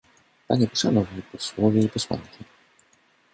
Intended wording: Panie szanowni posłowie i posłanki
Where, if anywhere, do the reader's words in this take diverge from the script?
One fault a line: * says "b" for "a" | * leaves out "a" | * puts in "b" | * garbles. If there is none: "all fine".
all fine